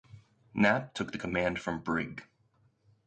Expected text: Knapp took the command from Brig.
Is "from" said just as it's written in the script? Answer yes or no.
yes